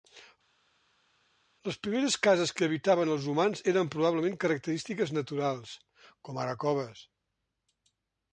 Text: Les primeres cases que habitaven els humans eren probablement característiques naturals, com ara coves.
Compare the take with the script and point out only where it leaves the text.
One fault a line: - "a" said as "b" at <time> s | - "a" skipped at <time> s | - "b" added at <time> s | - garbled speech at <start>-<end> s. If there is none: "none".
none